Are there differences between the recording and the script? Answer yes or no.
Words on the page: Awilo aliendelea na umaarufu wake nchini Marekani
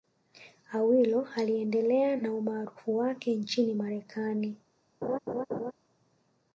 no